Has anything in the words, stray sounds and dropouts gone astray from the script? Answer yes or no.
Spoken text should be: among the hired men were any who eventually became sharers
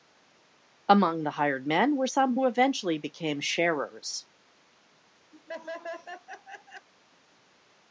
yes